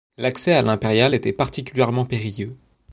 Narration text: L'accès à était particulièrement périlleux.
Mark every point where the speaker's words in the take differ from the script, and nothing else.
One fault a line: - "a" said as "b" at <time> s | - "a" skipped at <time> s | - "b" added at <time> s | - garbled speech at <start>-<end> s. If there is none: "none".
- "l'impériale" added at 0.6 s